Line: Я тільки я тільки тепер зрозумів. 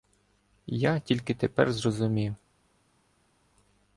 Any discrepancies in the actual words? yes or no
yes